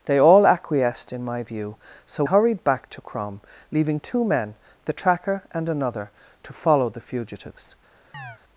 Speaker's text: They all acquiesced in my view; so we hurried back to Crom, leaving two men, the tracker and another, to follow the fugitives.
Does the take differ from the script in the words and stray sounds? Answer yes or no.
yes